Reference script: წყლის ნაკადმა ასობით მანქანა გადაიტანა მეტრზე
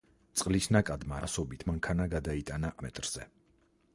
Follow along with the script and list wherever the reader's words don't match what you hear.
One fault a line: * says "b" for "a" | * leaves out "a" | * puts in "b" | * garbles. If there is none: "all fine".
all fine